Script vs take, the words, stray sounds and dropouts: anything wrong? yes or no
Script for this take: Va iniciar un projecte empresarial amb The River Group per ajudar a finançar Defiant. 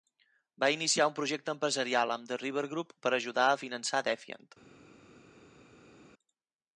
no